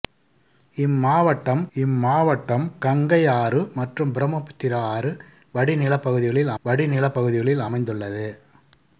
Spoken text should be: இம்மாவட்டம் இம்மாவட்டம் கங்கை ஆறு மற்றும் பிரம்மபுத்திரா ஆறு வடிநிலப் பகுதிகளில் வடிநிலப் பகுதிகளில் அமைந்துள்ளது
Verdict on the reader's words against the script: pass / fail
pass